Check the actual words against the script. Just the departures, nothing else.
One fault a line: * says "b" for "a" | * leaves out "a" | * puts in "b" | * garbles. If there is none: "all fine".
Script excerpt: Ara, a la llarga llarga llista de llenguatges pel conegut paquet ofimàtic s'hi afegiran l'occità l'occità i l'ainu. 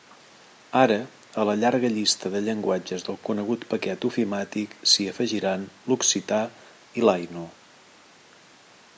* leaves out "llarga"
* says "del" for "pel"
* leaves out "l'occità"